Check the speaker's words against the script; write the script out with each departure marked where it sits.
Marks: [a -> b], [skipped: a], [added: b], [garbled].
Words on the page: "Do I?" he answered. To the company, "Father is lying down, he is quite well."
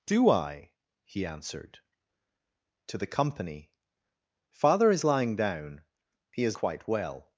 "Do I?" he answered. To the company, "Father is lying down, he is quite well."